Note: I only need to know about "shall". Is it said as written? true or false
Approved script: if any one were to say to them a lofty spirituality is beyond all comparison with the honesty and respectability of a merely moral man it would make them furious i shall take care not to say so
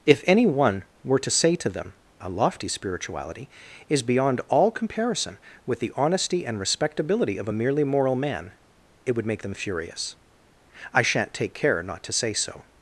false